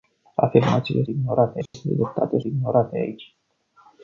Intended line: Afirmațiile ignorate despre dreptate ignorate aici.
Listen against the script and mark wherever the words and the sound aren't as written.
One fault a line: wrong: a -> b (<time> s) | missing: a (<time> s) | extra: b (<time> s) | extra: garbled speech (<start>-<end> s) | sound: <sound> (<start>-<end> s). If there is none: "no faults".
sound: dropout (1.7-1.7 s)